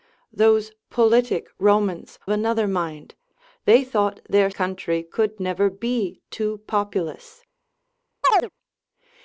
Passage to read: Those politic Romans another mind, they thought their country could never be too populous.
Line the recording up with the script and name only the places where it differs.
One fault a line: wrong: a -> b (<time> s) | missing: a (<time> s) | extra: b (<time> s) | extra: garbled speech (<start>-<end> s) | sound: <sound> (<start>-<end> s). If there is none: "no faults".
sound: chirp (8.2-8.5 s)